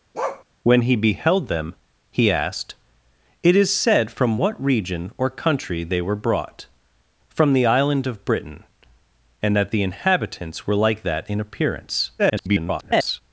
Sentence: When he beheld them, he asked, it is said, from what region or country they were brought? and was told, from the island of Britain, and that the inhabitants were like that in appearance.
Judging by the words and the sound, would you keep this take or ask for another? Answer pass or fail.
fail